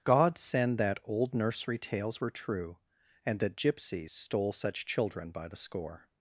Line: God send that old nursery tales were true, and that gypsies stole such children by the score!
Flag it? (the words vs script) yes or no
no